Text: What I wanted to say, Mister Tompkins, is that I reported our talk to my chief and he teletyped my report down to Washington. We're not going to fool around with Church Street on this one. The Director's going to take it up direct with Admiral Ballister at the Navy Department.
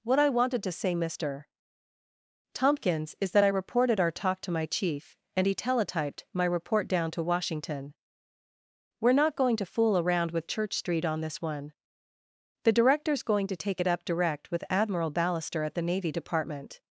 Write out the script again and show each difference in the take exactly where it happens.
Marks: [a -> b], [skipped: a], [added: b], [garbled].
What I wanted to say, Mister Tompkins, is that I reported our talk to my chief and he teletyped my report down to Washington. We're not going to fool around with Church Street on this one. The Director's going to take it up direct with Admiral Ballister at the Navy Department.